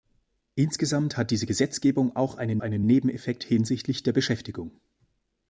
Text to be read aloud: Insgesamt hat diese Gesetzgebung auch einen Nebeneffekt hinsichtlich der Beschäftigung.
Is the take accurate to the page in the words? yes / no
no